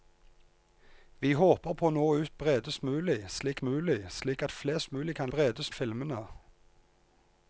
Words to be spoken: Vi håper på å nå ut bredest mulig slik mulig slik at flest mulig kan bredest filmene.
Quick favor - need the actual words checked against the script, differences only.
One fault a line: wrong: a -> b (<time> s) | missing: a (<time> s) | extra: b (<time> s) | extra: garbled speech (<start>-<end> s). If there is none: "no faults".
no faults